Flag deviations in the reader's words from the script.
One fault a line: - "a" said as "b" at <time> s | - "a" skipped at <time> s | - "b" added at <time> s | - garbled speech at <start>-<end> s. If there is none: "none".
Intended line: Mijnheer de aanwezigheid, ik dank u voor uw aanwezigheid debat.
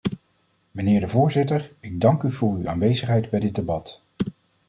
- "aanwezigheid" said as "voorzitter" at 1.1 s
- "bij dit" added at 3.3 s